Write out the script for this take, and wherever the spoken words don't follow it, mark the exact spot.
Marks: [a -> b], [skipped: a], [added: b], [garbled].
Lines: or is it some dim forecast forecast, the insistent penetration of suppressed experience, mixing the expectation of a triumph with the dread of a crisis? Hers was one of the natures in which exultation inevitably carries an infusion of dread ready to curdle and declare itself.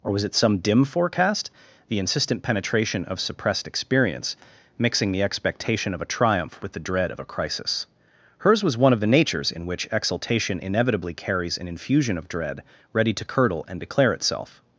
or [is -> was] it some dim forecast [skipped: forecast,] the insistent penetration of suppressed experience, mixing the expectation of a triumph with the dread of a crisis? Hers was one of the natures in which exultation inevitably carries an infusion of dread ready to curdle and declare itself.